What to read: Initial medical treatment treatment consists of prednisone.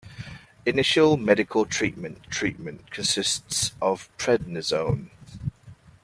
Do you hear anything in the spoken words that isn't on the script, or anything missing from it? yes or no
no